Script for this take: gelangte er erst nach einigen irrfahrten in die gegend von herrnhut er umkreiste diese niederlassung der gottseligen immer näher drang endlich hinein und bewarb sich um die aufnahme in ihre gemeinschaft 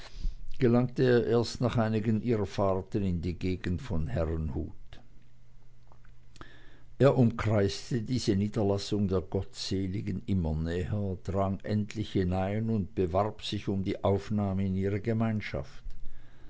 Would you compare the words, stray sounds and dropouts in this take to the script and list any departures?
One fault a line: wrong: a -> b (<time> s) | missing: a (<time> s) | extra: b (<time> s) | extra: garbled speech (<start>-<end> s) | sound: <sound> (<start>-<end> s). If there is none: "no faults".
no faults